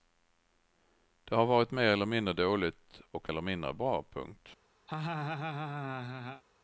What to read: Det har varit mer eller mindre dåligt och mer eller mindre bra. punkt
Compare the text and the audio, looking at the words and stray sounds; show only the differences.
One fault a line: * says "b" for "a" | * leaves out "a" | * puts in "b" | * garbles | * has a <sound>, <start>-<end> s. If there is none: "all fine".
* leaves out "mer"
* has a laugh, 4.9-6.4 s